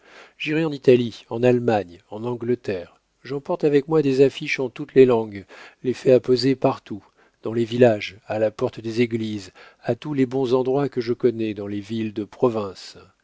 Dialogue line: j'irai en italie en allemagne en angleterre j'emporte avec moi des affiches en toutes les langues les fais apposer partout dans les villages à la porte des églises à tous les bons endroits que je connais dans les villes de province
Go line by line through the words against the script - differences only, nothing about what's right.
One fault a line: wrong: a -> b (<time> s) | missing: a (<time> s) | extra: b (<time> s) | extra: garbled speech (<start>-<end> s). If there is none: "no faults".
no faults